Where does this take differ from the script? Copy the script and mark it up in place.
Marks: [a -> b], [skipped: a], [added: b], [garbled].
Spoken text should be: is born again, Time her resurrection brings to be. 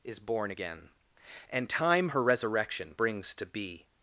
is born again, [added: And] Time her resurrection brings to be.